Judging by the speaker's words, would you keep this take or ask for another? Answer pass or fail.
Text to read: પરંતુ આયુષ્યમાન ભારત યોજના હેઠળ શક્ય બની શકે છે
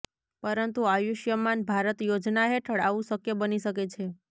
fail